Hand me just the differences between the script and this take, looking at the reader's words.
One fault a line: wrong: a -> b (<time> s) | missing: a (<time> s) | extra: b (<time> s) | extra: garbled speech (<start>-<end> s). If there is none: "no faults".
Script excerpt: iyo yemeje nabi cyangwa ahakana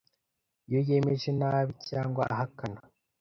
no faults